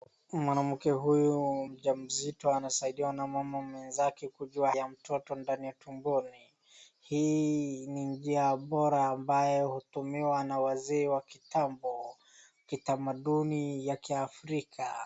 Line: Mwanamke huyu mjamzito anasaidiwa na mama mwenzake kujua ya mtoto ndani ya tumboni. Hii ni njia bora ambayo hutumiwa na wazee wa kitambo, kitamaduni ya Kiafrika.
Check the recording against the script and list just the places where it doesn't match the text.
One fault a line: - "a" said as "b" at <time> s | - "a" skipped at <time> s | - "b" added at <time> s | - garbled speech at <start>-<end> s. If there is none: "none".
none